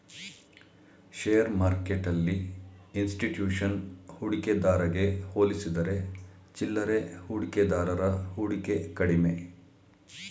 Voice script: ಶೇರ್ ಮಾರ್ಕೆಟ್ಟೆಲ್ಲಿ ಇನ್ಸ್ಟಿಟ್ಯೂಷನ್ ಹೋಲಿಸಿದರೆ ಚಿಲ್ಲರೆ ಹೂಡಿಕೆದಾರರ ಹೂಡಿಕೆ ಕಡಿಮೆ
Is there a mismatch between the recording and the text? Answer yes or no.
yes